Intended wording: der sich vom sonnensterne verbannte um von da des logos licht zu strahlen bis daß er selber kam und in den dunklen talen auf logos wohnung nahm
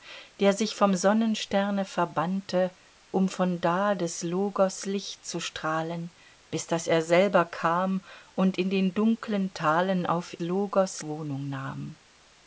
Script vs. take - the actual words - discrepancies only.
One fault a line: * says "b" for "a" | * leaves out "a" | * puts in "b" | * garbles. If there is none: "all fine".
all fine